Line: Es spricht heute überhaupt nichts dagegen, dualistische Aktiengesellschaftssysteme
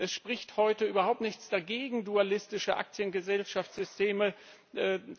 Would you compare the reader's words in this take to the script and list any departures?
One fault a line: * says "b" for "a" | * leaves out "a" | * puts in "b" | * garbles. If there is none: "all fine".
all fine